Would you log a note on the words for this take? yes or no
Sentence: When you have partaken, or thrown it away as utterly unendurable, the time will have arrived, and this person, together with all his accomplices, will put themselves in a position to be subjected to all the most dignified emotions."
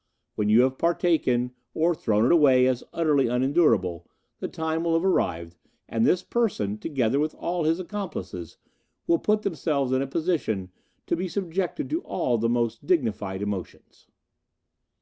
no